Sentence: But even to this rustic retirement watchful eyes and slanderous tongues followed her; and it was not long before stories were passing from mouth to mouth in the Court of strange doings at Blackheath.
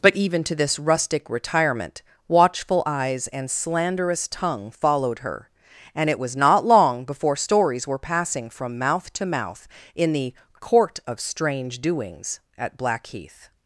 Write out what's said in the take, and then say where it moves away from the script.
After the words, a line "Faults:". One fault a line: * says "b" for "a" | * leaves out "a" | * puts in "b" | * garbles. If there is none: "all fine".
But even to this rustic retirement watchful eyes and slanderous tongue followed her; and it was not long before stories were passing from mouth to mouth in the Court of strange doings at Blackheath.
Faults:
* says "tongue" for "tongues"